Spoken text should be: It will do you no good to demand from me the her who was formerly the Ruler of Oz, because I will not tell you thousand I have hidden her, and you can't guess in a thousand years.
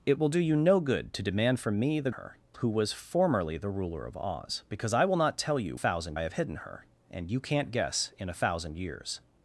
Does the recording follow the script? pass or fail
pass